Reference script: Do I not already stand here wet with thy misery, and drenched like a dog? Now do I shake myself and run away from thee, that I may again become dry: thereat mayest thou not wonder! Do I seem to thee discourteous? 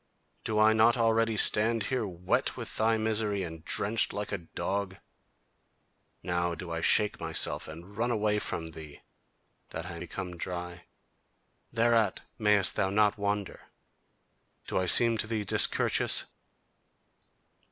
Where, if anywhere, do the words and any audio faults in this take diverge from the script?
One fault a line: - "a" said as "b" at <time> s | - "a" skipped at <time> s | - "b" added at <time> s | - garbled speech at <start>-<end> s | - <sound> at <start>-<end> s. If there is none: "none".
- "may again" skipped at 10.0 s